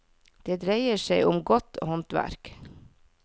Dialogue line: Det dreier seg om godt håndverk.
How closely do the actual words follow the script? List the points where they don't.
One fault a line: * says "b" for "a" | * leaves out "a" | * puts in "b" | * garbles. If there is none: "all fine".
all fine